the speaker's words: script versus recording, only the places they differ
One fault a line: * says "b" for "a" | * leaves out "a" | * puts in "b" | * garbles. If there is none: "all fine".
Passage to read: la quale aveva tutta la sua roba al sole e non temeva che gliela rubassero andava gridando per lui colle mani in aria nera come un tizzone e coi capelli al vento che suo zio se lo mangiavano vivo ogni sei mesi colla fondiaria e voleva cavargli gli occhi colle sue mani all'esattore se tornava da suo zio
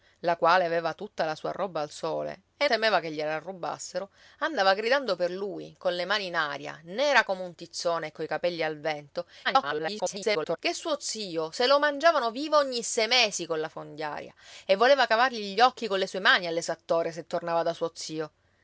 * leaves out "non"
* garbles